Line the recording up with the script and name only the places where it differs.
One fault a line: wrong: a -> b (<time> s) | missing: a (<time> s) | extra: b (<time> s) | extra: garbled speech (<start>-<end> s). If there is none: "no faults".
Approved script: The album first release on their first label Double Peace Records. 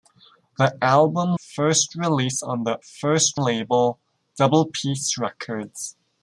no faults